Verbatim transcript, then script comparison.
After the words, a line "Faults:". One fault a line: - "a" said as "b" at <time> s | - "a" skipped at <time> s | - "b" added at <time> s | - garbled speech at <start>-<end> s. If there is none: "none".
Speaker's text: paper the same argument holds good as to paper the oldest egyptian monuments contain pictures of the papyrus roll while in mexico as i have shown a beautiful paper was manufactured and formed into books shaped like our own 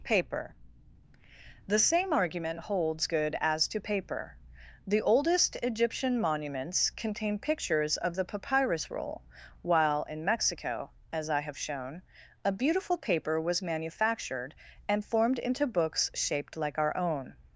paper the same argument holds good as to paper the oldest egyptian monuments contain pictures of the papyrus roll while in mexico as i have shown a beautiful paper was manufactured and formed into books shaped like our own
Faults:
none